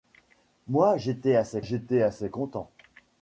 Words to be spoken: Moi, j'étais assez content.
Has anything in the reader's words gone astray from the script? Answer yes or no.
yes